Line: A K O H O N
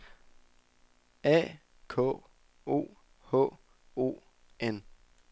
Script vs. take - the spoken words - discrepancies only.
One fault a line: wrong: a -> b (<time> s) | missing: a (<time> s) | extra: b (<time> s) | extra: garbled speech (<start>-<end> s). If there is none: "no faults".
no faults